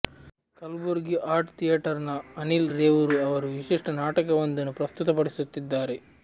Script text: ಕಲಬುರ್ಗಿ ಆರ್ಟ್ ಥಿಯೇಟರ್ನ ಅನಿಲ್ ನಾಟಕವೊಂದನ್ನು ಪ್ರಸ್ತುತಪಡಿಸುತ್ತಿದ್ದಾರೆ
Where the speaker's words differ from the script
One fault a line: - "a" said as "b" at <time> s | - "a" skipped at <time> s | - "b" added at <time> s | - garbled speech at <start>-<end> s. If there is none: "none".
- "ರೇವೂರು ಅವರು ವಿಶಿಷ್ಟ" added at 2.7 s